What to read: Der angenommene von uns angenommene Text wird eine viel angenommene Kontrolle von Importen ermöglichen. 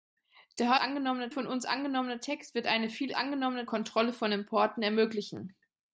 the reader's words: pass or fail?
pass